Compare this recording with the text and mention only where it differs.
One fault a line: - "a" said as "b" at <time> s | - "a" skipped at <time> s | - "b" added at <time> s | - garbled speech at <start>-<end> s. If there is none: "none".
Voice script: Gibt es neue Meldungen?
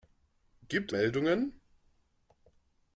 - "es neue" skipped at 0.9 s